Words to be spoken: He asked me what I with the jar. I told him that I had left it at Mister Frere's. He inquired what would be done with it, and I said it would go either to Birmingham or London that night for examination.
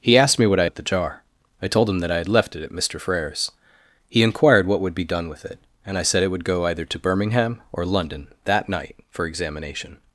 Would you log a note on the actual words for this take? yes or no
no